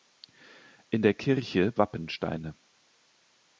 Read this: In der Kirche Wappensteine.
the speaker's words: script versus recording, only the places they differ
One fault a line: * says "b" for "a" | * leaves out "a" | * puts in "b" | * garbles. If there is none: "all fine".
all fine